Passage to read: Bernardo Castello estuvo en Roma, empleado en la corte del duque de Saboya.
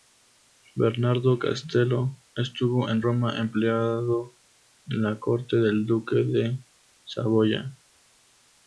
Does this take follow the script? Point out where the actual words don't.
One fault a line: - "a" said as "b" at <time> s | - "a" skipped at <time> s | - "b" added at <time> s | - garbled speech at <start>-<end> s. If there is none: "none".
none